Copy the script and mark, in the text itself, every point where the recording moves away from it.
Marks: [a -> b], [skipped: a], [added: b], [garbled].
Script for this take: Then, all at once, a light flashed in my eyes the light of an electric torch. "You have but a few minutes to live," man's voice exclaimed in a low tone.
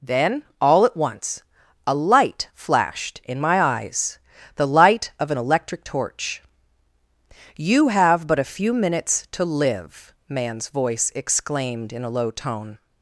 Then, all at once, a light flashed in my eyes the light of an electric torch. "You have but a few minutes to live," man's voice exclaimed in a low tone.